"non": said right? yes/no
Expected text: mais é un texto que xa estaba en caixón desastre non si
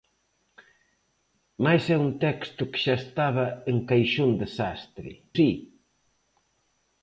no